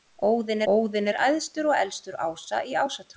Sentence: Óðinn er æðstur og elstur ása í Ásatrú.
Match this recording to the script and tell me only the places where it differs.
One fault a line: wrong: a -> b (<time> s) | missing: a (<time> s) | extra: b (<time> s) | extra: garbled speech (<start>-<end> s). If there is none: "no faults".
extra: óðinn (0.7 s)